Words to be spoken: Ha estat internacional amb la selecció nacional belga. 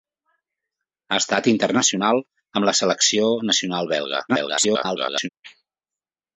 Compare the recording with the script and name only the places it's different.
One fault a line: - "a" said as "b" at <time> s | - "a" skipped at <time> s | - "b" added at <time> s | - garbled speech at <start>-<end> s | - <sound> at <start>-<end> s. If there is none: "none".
- garbled speech at 4.3-5.3 s